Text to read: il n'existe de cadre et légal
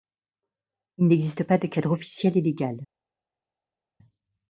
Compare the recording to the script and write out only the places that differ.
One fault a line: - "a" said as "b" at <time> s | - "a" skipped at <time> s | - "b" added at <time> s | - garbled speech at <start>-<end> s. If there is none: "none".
- "pas" added at 1.4 s
- "officiel" added at 1.9 s